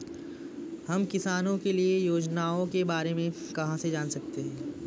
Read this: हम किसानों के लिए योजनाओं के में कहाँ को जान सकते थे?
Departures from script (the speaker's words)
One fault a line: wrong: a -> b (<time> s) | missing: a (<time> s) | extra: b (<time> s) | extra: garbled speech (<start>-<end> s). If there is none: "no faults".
extra: बारे (2.8 s)
wrong: को -> से (3.8 s)
wrong: थे -> हैं (4.4 s)